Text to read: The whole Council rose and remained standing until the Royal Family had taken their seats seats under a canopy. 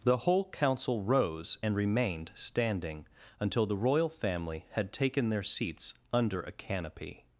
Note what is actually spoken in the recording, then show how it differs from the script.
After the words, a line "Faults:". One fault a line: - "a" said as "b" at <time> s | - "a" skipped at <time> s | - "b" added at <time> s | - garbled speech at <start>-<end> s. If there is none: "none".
The whole Council rose and remained standing until the Royal Family had taken their seats under a canopy.
Faults:
- "seats" skipped at 5.9 s